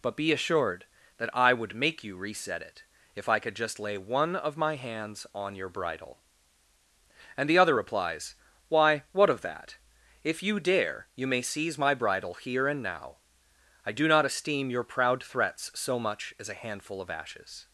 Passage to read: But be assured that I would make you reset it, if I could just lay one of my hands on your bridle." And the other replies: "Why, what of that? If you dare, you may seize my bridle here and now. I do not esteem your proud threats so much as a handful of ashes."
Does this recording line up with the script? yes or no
yes